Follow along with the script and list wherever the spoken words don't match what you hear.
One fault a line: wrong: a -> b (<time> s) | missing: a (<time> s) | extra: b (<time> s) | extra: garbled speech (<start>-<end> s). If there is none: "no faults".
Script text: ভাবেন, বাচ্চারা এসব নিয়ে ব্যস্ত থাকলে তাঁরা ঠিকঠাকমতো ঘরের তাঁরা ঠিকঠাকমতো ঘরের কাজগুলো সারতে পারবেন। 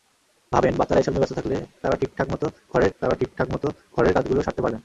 no faults